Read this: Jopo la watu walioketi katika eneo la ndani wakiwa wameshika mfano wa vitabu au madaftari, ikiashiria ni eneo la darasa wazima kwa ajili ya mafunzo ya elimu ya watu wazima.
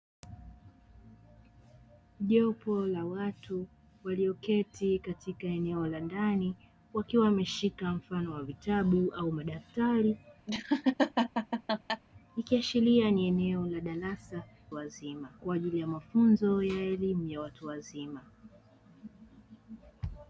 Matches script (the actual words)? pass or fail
pass